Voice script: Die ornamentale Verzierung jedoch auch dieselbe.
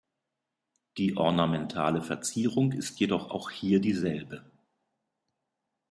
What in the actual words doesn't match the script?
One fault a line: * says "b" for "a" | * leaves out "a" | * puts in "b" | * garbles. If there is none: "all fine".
* puts in "ist"
* puts in "hier"